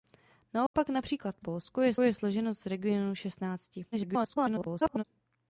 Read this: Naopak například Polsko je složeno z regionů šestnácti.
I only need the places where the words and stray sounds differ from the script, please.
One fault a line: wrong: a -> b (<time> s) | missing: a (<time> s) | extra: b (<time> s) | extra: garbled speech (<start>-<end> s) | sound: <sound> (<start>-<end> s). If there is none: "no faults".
sound: dropout (0.7-0.7 s)
extra: je (2.0 s)
extra: garbled speech (3.9-5.0 s)